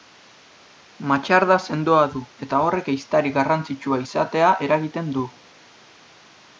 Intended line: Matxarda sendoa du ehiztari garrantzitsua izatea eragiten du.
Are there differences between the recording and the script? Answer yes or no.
yes